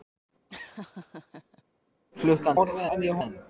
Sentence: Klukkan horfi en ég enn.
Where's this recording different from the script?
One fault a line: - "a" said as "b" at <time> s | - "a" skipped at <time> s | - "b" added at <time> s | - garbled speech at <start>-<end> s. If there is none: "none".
none